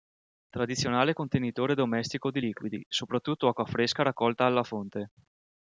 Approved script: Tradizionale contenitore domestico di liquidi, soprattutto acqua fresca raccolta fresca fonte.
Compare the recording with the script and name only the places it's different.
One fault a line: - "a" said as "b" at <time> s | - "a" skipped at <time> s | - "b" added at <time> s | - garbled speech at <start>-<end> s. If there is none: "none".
- "fresca" said as "alla" at 4.4 s